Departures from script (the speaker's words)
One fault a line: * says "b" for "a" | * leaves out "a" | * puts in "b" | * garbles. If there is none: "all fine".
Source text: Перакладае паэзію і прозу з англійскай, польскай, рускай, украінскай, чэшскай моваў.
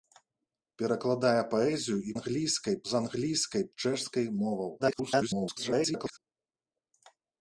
* says "англійскай" for "прозу"
* leaves out "польскай рускай украінскай"
* garbles